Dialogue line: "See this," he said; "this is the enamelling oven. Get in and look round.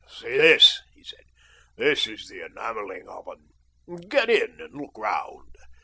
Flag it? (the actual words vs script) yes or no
no